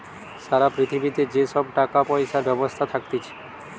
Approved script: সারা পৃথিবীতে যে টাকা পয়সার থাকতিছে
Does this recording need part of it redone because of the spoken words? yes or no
yes